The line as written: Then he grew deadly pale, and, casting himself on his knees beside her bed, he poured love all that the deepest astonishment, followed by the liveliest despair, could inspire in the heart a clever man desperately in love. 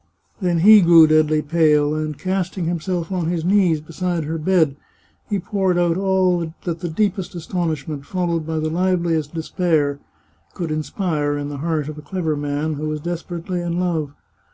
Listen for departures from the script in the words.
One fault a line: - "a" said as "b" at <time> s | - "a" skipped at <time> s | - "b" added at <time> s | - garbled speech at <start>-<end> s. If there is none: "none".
- "love" said as "out" at 5.8 s
- "of" added at 11.9 s
- "who was" added at 12.8 s